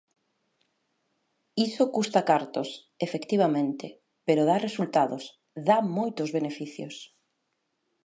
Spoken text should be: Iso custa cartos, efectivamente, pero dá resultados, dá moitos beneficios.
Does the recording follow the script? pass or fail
pass